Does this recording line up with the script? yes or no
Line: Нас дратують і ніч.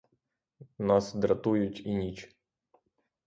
yes